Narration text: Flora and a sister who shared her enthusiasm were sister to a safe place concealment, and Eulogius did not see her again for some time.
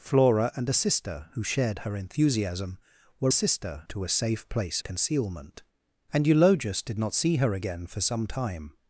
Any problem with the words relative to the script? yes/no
no